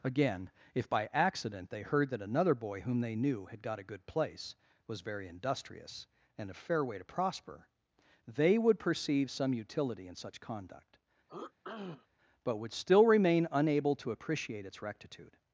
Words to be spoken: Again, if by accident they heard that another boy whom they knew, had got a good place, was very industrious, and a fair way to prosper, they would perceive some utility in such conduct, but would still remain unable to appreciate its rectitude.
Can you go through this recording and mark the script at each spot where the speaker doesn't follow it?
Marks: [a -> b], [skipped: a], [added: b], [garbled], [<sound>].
Again, if by accident they heard that another boy whom they knew, had got a good place, was very industrious, and a fair way to prosper, they would perceive some utility in such conduct, [throat clearing] but would still remain unable to appreciate its rectitude.